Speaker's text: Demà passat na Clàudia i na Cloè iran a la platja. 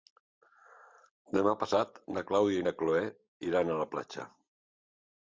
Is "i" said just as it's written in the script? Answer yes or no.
yes